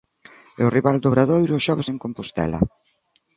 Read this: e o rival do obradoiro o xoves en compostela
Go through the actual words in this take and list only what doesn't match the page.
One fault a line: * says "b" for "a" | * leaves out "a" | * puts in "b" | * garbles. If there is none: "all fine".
all fine